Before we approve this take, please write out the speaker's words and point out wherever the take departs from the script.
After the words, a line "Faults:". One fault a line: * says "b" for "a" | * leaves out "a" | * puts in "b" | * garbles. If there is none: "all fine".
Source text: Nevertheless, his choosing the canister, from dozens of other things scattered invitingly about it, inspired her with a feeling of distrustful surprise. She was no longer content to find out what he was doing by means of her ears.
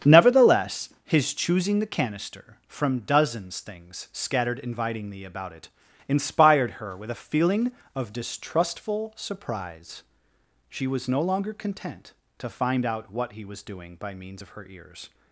Nevertheless, his choosing the canister, from dozens things scattered invitingly about it, inspired her with a feeling of distrustful surprise. She was no longer content to find out what he was doing by means of her ears.
Faults:
* leaves out "of other"